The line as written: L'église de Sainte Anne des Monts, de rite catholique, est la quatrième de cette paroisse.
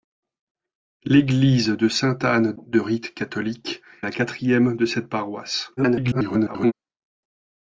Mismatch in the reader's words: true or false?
true